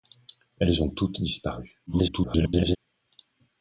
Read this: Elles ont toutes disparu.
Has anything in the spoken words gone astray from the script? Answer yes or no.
yes